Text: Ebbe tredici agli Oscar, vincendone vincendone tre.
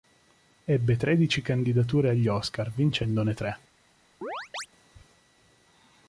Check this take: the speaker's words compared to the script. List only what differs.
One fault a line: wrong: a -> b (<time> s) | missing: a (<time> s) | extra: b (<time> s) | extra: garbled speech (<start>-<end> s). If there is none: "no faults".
extra: candidature (1.4 s)
missing: vincendone (3.3 s)